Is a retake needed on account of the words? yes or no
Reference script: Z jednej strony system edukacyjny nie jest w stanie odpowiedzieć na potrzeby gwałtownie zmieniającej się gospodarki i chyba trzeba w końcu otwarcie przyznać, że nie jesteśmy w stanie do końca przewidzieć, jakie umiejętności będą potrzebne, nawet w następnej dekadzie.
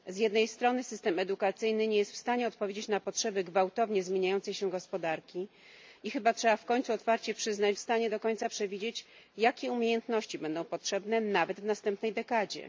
yes